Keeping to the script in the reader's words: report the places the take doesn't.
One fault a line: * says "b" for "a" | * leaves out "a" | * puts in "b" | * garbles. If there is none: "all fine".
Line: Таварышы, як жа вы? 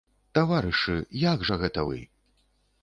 * puts in "гэта"